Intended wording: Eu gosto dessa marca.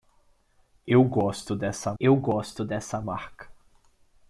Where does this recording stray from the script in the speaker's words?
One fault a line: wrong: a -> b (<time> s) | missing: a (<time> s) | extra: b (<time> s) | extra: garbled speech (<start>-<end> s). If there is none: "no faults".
extra: eu gosto dessa (2.0 s)